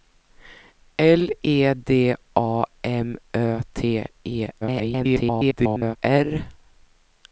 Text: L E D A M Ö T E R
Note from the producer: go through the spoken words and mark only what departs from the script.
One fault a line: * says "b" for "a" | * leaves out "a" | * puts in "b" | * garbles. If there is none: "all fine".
* garbles